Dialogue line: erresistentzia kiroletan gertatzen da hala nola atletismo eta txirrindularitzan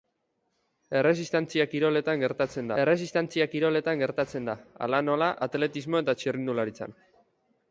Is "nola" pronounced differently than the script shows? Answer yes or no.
no